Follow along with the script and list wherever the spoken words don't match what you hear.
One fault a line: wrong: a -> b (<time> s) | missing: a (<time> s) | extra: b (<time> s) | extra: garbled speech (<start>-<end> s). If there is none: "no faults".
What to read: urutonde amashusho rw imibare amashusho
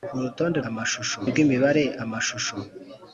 no faults